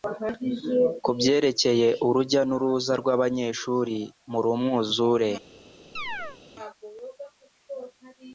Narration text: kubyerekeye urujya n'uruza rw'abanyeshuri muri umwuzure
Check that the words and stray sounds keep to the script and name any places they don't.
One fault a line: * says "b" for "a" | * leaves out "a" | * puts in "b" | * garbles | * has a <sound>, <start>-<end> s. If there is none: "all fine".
* has a chirp, 6.0-6.4 s